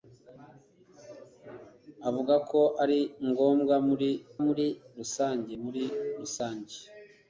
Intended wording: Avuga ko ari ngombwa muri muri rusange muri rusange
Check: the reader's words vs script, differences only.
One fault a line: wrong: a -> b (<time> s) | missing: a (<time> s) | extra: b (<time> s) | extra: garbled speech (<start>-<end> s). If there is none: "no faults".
no faults